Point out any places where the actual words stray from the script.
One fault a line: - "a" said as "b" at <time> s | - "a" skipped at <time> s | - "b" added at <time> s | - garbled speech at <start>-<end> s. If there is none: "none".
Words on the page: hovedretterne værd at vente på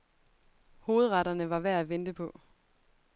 - "var" added at 1.5 s